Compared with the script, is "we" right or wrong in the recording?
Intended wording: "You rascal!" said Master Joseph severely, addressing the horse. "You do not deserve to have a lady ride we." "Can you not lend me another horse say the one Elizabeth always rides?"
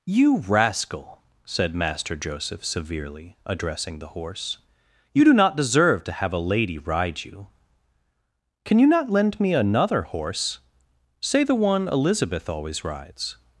wrong